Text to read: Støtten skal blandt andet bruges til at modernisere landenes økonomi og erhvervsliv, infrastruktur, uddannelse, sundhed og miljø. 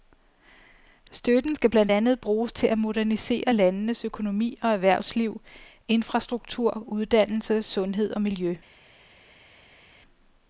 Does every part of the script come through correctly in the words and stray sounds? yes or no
yes